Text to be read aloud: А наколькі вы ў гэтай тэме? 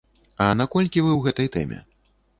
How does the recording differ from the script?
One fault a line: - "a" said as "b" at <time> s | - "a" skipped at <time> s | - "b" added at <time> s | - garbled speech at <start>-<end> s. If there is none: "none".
none